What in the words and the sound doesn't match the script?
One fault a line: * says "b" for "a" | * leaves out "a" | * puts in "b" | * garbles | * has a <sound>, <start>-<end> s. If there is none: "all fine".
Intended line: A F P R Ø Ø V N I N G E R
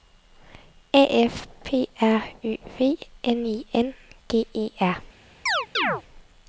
* leaves out "Ø"
* has a chirp, 5.5-6.0 s